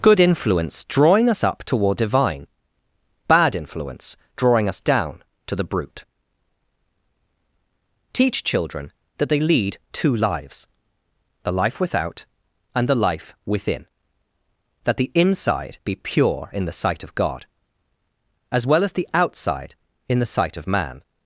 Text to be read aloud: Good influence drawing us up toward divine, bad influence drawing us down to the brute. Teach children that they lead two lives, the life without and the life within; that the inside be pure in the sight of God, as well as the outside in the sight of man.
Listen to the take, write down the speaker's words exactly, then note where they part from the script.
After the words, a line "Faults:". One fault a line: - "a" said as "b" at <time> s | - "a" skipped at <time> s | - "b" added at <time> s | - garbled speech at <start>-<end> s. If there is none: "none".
Good influence drawing us up toward divine, bad influence drawing us down to the brute. Teach children that they lead two lives, the life without and the life within; that the inside be pure in the sight of God, as well as the outside in the sight of man.
Faults:
none